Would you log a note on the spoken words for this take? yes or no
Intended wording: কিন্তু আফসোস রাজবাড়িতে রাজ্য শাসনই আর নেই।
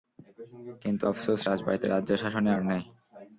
no